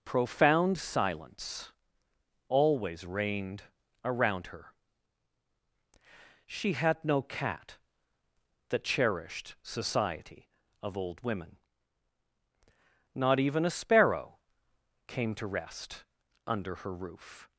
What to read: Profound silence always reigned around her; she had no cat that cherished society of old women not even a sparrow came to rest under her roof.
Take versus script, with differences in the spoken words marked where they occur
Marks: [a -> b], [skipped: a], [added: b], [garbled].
Profound silence always reigned around her; she had no cat that cherished society of old women not even a sparrow came to rest under her roof.